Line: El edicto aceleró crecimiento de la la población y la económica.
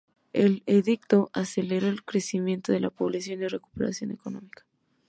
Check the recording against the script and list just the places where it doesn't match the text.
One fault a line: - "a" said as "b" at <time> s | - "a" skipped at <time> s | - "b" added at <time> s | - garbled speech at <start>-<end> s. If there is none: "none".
- "el" added at 1.9 s
- "la" skipped at 2.9 s
- "recuperación" added at 3.5 s